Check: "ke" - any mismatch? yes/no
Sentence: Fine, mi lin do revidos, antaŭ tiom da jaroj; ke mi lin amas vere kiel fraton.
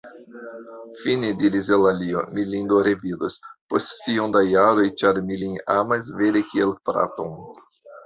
yes